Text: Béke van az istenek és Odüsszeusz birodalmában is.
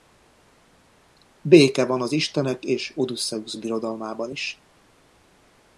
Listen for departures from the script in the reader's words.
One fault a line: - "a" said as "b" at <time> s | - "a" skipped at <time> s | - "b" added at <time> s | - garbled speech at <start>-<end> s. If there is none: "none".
none